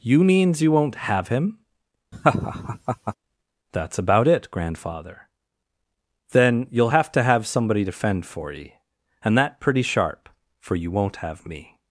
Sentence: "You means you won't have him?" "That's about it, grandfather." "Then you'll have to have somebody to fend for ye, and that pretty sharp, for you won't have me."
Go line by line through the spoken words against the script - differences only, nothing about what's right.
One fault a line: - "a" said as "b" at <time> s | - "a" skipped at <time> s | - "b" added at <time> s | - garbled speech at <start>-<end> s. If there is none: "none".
none